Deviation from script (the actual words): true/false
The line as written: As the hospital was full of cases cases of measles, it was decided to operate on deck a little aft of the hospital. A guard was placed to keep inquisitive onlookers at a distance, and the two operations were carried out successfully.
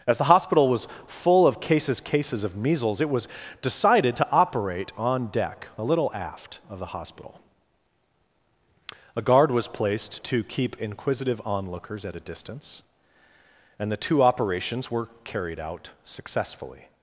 false